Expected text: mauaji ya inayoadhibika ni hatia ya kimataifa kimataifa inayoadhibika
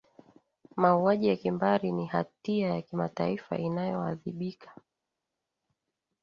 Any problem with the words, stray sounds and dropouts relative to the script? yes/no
yes